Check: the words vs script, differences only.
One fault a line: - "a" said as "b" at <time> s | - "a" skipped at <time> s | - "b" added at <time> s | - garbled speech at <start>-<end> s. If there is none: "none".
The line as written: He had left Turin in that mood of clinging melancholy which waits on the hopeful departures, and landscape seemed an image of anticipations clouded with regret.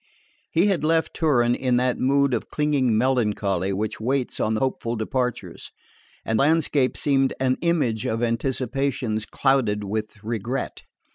none